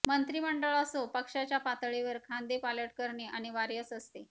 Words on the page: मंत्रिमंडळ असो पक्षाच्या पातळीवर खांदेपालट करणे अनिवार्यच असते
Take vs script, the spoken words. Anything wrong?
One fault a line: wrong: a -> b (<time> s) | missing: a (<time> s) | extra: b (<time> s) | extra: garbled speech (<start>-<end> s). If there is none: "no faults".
no faults